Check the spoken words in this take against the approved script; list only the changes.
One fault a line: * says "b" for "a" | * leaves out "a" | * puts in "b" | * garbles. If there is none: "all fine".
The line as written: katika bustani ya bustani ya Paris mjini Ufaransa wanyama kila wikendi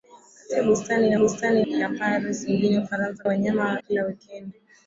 all fine